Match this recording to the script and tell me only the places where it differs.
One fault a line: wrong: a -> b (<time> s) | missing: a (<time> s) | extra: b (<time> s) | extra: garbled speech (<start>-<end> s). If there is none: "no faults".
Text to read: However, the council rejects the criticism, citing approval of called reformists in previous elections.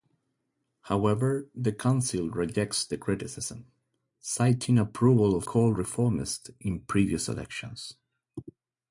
no faults